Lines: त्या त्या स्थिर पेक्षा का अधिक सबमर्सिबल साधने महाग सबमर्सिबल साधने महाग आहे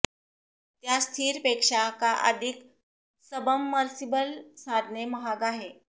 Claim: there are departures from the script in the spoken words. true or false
true